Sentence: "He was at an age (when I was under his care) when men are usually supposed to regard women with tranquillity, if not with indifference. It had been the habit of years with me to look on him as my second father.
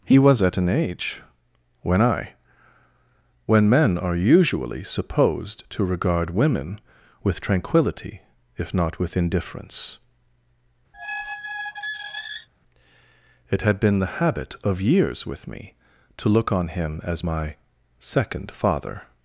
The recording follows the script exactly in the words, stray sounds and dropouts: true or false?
false